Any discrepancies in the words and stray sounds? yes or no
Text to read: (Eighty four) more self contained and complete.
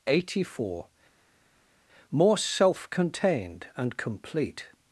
no